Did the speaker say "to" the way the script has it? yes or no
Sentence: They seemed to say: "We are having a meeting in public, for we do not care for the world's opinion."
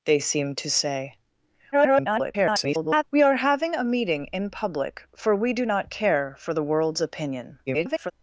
yes